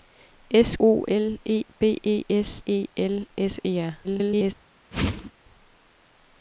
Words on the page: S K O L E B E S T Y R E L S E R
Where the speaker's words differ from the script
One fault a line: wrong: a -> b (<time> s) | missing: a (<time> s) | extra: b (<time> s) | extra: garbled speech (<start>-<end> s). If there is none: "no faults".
missing: K (0.8 s)
missing: T Y R (2.6 s)
extra: garbled speech (4.0-4.5 s)